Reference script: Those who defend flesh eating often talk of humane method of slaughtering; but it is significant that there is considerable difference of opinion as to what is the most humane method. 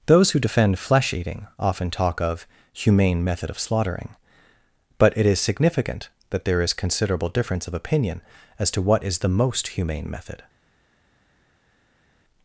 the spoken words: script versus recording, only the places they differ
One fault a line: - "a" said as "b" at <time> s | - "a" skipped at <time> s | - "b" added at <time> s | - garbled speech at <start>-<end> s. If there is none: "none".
none